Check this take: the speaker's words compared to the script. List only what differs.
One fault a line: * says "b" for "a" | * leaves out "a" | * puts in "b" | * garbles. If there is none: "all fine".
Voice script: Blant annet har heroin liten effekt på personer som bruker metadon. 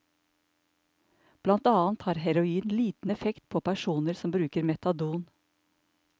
all fine